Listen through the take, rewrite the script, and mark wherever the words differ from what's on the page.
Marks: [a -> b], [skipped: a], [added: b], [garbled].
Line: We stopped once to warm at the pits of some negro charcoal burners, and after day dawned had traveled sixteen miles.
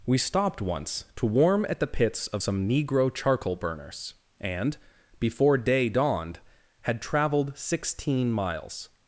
We stopped once to warm at the pits of some negro charcoal burners, and [after -> before] day dawned had traveled sixteen miles.